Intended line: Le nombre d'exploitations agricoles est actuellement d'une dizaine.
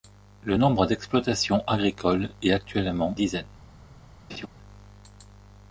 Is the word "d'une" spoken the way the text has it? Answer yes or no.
no